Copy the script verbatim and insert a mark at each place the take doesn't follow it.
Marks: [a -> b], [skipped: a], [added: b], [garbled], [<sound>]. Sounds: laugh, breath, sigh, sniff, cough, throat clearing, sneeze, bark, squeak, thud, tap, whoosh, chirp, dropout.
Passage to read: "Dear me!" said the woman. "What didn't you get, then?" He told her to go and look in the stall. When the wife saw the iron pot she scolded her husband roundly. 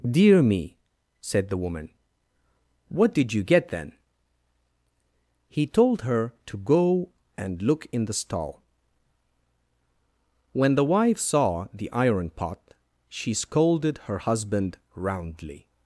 "Dear me!" said the woman. "What [didn't -> did] you get, then?" He told her to go and look in the stall. When the wife saw the iron pot she scolded her husband roundly.